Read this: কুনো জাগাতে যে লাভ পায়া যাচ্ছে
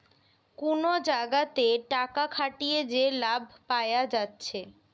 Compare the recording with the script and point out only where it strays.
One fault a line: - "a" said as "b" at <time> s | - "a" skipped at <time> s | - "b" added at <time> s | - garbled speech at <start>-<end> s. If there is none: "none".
- "টাকা খাটিয়ে" added at 1.9 s